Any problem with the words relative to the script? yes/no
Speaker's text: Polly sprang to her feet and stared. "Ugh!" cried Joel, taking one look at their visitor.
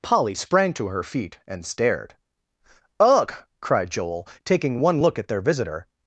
no